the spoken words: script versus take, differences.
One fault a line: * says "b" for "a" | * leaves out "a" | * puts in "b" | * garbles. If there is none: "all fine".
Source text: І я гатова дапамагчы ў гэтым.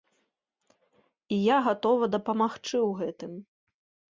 all fine